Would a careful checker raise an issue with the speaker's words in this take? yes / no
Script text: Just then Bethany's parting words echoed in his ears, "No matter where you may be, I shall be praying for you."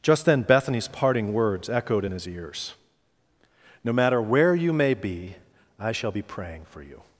no